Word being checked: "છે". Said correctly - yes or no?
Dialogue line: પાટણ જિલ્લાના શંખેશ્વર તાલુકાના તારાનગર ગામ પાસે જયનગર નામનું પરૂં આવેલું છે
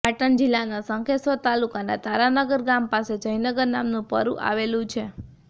yes